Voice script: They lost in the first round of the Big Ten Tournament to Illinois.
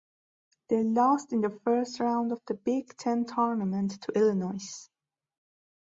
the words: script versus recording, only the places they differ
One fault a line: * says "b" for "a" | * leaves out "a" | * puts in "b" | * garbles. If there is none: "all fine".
all fine